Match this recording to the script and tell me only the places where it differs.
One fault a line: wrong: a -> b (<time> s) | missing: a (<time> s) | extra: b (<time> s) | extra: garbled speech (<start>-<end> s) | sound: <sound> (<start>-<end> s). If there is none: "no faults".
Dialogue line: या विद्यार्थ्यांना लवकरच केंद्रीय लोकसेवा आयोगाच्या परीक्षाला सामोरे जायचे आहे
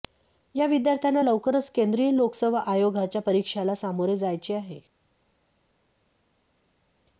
no faults